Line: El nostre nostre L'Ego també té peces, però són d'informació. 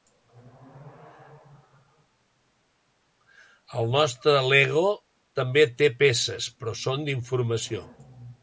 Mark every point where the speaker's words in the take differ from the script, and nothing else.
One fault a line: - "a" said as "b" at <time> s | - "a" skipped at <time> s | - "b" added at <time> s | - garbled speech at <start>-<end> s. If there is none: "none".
- "nostre" skipped at 4.3 s